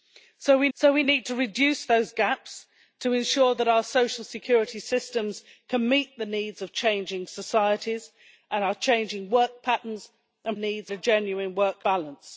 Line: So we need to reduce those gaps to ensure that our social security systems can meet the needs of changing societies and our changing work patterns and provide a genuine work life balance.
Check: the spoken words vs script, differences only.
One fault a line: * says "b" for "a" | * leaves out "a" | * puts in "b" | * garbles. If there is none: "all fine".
* puts in "so we"
* says "needs" for "provide"
* leaves out "life"